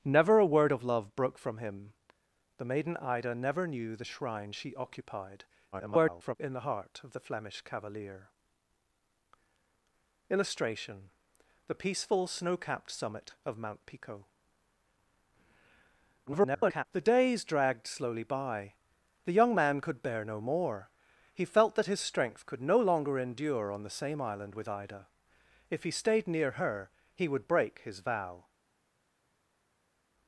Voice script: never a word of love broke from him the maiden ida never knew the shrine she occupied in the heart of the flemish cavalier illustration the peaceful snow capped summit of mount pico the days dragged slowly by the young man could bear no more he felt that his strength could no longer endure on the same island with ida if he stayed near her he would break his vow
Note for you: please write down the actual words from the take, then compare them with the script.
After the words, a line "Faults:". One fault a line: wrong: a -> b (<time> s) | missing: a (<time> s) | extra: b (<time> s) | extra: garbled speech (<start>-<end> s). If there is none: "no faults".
never a word of love broke from him the maiden ida never knew the shrine she occupied [garbled] in the heart of the flemish cavalier illustration the peaceful snow capped summit of mount pico [garbled] the days dragged slowly by the young man could bear no more he felt that his strength could no longer endure on the same island with ida if he stayed near her he would break his vow
Faults:
extra: garbled speech (5.7-6.4 s)
extra: garbled speech (16.3-16.8 s)